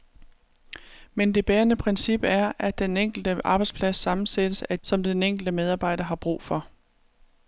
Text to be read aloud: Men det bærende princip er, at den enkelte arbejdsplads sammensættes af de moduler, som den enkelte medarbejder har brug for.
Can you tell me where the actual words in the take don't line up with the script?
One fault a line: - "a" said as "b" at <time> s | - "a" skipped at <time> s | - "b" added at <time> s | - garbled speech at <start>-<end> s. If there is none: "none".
- "de moduler" skipped at 4.8 s